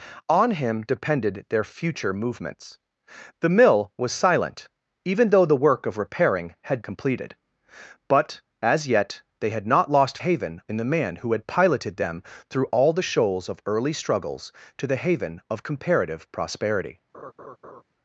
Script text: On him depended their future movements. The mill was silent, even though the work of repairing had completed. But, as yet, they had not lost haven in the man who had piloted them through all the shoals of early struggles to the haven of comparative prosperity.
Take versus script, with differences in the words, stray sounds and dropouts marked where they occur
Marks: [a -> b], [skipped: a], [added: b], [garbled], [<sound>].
On him depended their future movements. The mill was silent, even though the work of repairing had completed. But, as yet, they had not lost haven in the man who had piloted them through all the shoals of early struggles to the haven of comparative prosperity. [laugh]